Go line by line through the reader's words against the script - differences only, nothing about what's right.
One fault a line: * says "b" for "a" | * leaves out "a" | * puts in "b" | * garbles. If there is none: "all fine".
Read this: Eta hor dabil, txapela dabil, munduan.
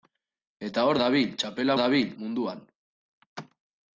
all fine